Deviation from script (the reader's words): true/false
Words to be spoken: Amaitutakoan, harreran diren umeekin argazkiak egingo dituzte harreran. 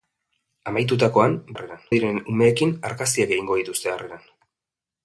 false